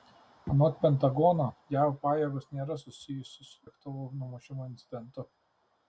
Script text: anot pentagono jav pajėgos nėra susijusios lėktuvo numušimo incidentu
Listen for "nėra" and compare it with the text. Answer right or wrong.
right